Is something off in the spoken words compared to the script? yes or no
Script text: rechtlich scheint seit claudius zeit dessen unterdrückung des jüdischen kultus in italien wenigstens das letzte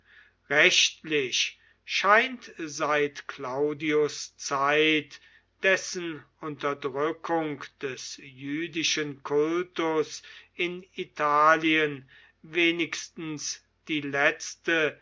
yes